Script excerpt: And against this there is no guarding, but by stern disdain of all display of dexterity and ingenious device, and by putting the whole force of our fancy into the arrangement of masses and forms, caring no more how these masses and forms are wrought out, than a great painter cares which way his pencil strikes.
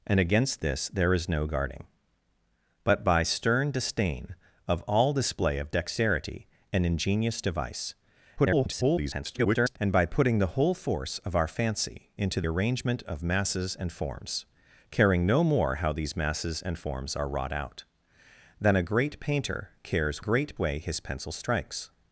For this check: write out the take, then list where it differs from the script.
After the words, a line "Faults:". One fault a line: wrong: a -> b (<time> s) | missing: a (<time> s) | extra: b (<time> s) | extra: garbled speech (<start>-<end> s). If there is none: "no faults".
And against this there is no guarding, but by stern disdain of all display of dexterity and ingenious device, [garbled] and by putting the whole force of our fancy into arrangement of masses and forms, caring no more how these masses and forms are wrought out, than a great painter cares great way his pencil strikes.
Faults:
extra: garbled speech (8.4-9.8 s)
missing: the (12.4 s)
wrong: which -> great (20.2 s)